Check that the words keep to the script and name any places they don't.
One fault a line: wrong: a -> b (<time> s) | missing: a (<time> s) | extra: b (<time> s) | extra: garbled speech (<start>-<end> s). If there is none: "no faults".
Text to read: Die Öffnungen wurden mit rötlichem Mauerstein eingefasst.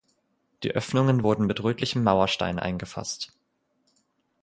no faults